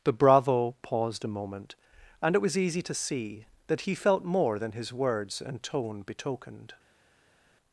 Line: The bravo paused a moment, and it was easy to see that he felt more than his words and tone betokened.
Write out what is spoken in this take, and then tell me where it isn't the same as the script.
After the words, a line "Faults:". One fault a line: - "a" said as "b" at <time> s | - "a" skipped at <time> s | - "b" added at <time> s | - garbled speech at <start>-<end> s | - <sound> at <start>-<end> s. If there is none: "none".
The bravo paused a moment, and it was easy to see that he felt more than his words and tone betokened.
Faults:
none